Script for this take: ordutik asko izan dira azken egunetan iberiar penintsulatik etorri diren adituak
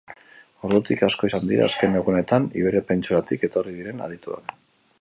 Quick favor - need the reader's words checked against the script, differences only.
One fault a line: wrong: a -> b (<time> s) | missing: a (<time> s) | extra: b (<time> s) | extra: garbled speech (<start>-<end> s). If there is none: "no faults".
no faults